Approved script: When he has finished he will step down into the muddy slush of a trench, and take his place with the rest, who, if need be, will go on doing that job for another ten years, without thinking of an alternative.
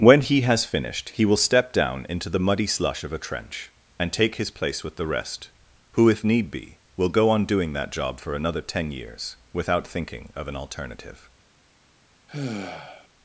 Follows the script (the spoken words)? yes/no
yes